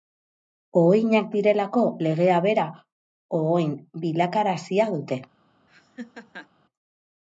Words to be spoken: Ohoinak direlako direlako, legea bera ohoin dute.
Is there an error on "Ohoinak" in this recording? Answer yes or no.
no